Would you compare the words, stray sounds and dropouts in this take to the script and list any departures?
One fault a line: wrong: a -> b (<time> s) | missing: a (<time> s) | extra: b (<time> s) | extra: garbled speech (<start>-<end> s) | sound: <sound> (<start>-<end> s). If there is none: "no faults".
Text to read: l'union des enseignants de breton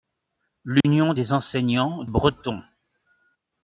sound: dropout (0.8-0.8 s)
missing: de (2.0 s)